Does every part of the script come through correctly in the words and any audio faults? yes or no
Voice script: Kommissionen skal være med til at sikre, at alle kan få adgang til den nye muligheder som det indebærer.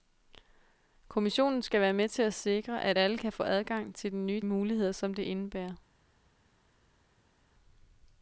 yes